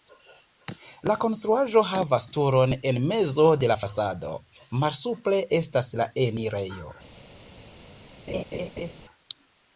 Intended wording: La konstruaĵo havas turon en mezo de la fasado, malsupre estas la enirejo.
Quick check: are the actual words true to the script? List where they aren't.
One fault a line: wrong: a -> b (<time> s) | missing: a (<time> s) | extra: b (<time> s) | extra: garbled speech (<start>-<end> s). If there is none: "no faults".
no faults